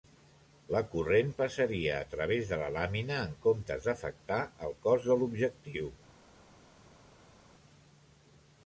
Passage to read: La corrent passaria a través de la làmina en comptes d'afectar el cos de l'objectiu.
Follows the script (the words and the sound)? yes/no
yes